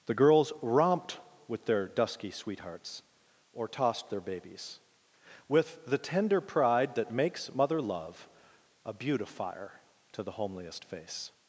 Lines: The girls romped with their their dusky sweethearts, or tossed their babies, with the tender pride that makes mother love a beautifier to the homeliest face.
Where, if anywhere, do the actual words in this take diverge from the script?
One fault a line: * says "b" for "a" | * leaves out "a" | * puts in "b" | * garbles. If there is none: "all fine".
* leaves out "their"